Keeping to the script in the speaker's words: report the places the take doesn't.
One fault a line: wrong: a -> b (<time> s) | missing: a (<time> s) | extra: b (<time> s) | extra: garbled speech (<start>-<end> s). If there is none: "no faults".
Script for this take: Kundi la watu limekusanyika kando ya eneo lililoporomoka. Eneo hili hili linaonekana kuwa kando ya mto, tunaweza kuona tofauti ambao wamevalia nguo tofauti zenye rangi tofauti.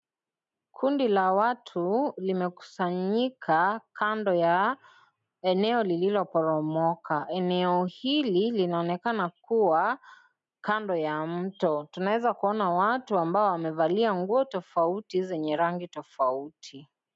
missing: hili (8.5 s)
wrong: tofauti -> watu (12.7 s)